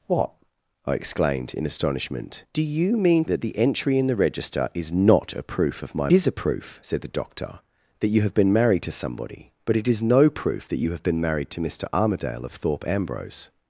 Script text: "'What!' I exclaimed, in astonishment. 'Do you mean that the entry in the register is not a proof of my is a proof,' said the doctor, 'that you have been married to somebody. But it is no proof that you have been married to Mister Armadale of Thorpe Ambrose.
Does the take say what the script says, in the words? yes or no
yes